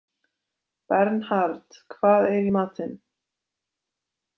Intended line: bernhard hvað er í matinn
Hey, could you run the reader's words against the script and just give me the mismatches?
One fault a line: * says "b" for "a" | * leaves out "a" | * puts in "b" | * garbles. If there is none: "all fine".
all fine